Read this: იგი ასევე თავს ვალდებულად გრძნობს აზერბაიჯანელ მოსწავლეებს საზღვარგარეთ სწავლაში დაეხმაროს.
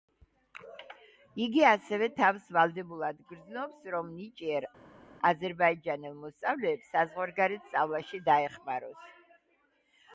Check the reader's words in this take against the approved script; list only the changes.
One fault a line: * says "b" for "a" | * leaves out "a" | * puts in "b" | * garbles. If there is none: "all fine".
* puts in "რომ ნიჭიერ"